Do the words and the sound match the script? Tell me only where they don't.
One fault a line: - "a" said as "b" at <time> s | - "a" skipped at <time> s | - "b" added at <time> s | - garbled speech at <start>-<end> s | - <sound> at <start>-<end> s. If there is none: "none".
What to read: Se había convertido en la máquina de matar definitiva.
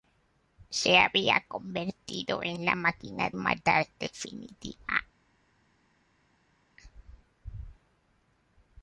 - "de" skipped at 3.3 s